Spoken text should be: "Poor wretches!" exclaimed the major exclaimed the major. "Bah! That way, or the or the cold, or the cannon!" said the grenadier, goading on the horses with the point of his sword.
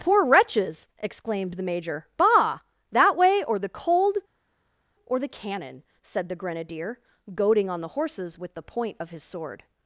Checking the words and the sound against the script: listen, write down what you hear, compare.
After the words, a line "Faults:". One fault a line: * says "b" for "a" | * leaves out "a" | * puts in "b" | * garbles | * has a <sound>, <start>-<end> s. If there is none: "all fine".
"Poor wretches!" exclaimed the major. "Bah! That way, or the cold, or the cannon!" said the grenadier, goading on the horses with the point of his sword.
Faults:
* leaves out "exclaimed the major"
* leaves out "or the"